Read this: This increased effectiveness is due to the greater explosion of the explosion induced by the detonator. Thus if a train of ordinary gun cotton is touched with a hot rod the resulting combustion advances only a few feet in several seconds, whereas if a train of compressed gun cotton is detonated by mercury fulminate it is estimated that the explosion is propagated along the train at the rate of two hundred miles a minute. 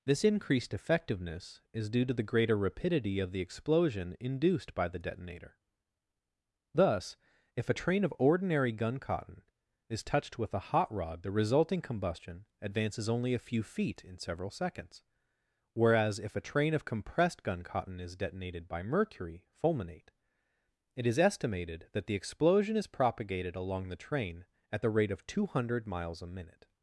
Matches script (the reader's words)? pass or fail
fail